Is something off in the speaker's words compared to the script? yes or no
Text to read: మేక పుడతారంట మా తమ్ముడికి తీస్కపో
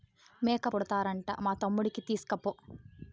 no